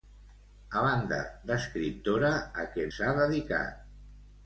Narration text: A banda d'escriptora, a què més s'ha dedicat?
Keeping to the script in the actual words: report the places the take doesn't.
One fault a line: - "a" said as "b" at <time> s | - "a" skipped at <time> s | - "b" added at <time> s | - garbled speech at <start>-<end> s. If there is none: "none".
- "més" skipped at 2.9 s